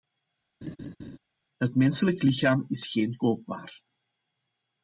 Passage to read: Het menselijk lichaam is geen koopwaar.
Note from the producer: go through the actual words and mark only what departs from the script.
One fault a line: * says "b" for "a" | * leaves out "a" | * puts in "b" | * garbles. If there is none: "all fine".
all fine